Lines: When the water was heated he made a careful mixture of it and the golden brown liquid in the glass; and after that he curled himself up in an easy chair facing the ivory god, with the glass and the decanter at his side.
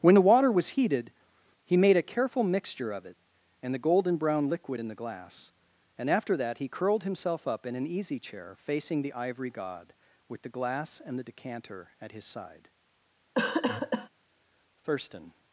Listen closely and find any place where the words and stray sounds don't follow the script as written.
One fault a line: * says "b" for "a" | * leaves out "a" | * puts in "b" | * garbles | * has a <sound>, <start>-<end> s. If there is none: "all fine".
* has a cough, 13.4-14.1 s
* puts in "Thurston"